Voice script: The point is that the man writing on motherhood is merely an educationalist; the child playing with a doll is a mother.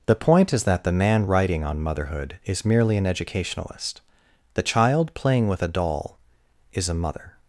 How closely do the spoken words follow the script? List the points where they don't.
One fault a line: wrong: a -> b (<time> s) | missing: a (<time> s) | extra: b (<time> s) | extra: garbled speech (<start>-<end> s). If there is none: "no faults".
no faults